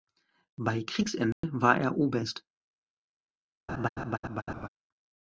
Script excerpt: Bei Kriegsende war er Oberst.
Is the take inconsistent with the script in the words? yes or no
no